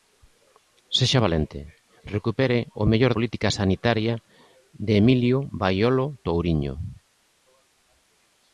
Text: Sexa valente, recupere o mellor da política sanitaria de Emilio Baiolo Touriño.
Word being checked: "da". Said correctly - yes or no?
no